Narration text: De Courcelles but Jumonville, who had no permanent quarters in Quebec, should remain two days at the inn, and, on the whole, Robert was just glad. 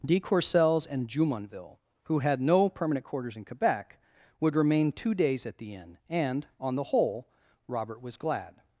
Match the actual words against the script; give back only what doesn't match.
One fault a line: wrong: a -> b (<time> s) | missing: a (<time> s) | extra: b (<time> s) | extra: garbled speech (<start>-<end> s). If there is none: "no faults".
wrong: but -> and (0.9 s)
wrong: should -> would (4.4 s)
missing: just (8.2 s)